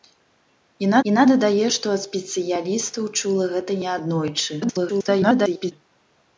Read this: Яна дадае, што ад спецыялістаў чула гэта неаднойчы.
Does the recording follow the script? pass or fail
fail